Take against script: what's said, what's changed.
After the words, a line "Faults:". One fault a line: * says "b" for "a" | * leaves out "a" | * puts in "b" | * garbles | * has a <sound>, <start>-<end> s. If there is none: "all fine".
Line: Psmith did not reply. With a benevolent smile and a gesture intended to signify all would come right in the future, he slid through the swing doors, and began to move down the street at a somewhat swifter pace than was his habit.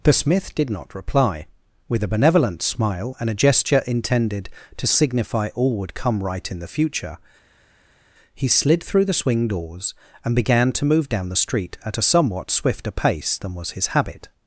The smith did not reply. With a benevolent smile and a gesture intended to signify all would come right in the future, he slid through the swing doors, and began to move down the street at a somewhat swifter pace than was his habit.
Faults:
* says "The smith" for "Psmith"